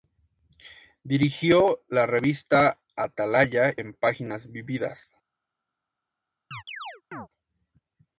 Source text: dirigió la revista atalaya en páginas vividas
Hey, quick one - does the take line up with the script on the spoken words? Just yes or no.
yes